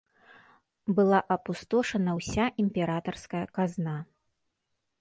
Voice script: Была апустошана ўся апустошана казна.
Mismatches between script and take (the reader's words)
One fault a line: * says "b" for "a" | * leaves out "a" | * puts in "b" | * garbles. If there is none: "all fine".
* says "імператарская" for "апустошана"